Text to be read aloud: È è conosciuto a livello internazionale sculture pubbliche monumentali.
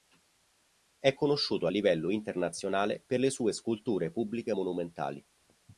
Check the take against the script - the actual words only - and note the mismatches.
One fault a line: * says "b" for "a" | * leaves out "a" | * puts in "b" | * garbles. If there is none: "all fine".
* leaves out "è"
* puts in "per le sue"